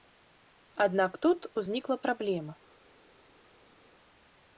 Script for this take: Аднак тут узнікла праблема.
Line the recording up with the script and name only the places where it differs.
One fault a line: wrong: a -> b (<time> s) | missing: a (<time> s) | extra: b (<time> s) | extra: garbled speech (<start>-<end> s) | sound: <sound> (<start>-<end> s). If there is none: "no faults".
no faults